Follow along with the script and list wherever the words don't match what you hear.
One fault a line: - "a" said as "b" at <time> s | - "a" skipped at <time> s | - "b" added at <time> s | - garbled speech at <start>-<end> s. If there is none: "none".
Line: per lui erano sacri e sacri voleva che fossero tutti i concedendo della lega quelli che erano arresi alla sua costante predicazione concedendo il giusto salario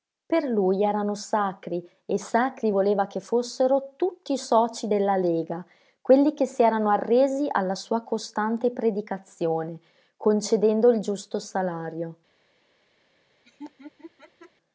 - "concedendo" said as "socii" at 4.4 s
- "si" added at 6.4 s